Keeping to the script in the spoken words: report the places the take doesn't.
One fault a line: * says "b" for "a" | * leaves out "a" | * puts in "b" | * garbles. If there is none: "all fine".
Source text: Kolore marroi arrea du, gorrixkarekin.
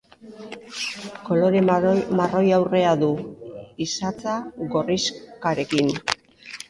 * puts in "isatsa"